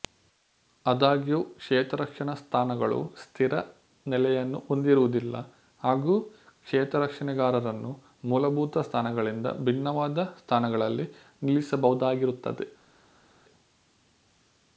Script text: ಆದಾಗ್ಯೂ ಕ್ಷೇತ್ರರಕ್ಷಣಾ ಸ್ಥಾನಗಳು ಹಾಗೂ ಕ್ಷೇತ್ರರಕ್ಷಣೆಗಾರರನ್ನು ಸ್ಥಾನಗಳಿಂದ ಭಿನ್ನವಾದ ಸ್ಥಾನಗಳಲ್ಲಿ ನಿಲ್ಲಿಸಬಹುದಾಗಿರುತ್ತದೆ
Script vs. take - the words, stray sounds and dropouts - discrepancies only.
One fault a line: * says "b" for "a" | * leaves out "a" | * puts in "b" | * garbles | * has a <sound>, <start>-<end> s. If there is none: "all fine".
* puts in "ಸ್ಥಿರ ನೆಲೆಯನ್ನು ಹೊಂದಿರುವುದಿಲ್ಲ"
* puts in "ಮೂಲಭೂತ"